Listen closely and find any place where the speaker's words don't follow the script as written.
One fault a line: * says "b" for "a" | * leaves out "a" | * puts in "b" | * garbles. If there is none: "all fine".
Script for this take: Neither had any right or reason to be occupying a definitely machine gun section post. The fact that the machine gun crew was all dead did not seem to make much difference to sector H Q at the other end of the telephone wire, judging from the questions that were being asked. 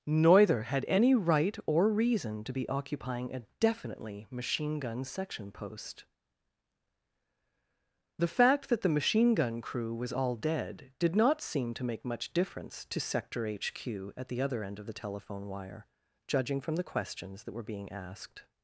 all fine